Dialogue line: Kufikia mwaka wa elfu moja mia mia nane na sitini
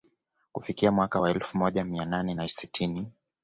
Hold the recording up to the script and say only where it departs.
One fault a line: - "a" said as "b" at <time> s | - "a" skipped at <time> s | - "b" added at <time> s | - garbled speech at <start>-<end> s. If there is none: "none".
- "mia" skipped at 2.0 s